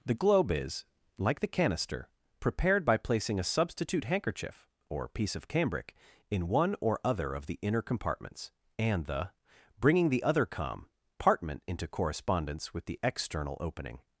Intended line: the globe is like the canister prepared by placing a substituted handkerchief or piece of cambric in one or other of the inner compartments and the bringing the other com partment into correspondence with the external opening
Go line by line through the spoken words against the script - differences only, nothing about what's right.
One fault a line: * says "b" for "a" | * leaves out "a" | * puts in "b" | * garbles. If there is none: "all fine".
* says "substitute" for "substituted"